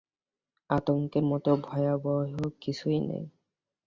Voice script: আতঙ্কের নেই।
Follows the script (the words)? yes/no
no